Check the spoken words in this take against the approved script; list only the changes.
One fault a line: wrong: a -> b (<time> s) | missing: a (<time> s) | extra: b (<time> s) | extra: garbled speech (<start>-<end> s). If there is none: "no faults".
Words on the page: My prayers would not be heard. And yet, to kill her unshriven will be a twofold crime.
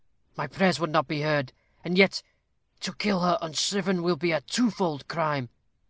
no faults